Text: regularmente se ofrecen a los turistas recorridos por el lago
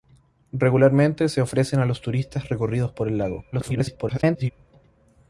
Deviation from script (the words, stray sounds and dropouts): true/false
true